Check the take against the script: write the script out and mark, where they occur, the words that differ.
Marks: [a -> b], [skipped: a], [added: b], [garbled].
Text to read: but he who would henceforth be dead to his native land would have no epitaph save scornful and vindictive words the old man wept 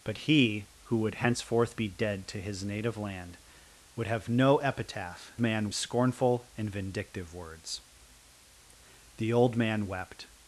but he who would henceforth be dead to his native land would have no epitaph [save -> man] scornful and vindictive words the old man wept